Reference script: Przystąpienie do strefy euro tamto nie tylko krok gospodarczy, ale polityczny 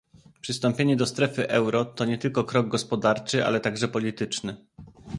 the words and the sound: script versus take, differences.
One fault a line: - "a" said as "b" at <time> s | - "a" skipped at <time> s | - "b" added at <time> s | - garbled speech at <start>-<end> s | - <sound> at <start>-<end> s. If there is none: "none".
- "tamto" said as "to" at 1.9 s
- "także" added at 3.6 s